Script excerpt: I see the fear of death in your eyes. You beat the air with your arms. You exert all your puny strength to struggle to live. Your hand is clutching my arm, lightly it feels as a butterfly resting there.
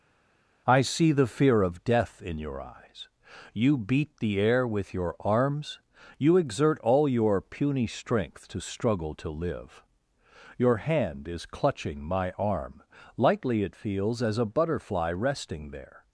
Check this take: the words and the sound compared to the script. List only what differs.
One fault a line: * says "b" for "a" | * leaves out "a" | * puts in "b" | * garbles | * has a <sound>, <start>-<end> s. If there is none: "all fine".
all fine